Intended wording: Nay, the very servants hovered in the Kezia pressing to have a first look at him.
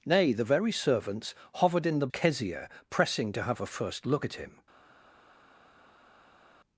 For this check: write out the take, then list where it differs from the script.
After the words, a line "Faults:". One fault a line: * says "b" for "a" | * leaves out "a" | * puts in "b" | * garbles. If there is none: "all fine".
Nay, the very servants hovered in the Kezia pressing to have a first look at him.
Faults:
all fine